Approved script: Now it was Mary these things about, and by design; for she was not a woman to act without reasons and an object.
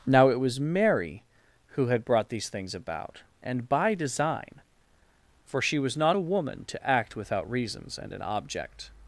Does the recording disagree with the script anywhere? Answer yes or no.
yes